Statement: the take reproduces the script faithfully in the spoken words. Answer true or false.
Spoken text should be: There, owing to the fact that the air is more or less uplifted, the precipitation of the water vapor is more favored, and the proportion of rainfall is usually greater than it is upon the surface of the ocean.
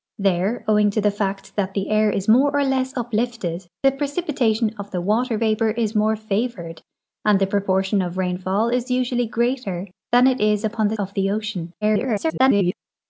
false